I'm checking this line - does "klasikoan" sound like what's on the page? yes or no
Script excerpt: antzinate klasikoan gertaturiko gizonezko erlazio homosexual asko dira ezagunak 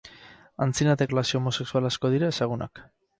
no